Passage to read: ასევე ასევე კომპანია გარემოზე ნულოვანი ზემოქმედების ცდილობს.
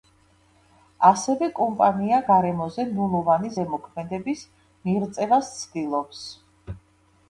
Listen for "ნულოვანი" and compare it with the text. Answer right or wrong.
right